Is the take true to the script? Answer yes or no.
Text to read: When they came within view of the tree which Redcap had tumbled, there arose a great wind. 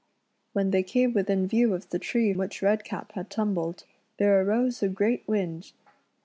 yes